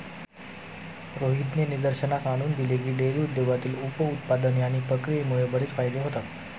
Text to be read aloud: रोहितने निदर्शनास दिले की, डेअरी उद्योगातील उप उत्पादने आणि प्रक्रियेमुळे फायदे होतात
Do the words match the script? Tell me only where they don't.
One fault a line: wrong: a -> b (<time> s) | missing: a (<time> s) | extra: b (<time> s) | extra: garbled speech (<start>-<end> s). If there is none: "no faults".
extra: आणून (2.3 s)
extra: बरेच (5.5 s)